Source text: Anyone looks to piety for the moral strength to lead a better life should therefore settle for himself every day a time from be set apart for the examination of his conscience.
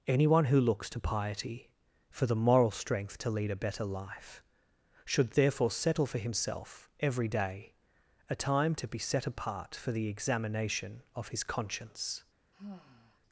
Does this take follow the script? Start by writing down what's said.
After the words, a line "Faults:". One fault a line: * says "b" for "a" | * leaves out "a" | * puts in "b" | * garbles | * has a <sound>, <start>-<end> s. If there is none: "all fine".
Anyone who looks to piety for the moral strength to lead a better life should therefore settle for himself every day a time to be set apart for the examination of his conscience.
Faults:
* puts in "who"
* says "to" for "from"
* has a sigh, 12.5-13.2 s